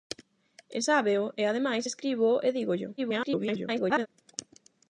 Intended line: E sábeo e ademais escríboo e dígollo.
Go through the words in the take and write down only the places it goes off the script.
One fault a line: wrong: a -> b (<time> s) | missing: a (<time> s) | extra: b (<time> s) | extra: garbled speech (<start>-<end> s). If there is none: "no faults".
extra: garbled speech (3.0-4.1 s)